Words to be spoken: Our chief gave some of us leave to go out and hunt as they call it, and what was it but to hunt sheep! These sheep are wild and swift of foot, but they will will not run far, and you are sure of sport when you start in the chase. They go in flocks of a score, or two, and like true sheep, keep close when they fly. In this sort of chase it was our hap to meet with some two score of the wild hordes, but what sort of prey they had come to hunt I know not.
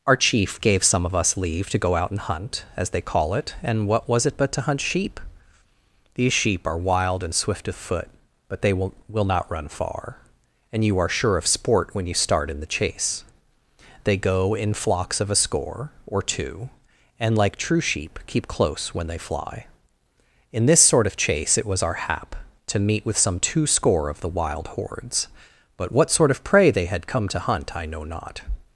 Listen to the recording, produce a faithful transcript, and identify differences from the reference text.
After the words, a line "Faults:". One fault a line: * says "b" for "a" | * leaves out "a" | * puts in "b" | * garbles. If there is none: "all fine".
Our chief gave some of us leave to go out and hunt as they call it, and what was it but to hunt sheep! These sheep are wild and swift of foot, but they will will not run far, and you are sure of sport when you start in the chase. They go in flocks of a score, or two, and like true sheep, keep close when they fly. In this sort of chase it was our hap to meet with some two score of the wild hordes, but what sort of prey they had come to hunt I know not.
Faults:
all fine